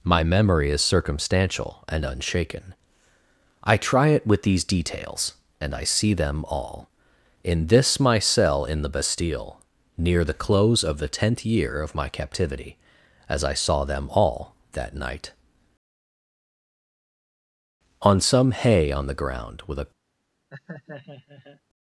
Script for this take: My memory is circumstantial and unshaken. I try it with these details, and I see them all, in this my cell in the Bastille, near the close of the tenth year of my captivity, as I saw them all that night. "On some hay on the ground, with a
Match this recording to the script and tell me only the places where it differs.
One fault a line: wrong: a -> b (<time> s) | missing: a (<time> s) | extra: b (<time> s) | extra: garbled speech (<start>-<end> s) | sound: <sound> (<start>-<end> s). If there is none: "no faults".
sound: laugh (20.5-21.6 s)